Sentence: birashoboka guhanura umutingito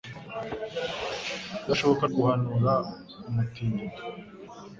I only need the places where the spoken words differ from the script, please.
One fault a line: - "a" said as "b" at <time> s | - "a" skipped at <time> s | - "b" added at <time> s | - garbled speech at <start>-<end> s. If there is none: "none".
none